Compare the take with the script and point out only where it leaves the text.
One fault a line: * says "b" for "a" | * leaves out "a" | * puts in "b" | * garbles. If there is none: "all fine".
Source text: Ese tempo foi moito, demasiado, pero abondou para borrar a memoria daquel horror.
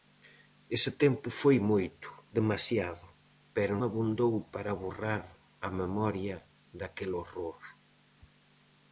all fine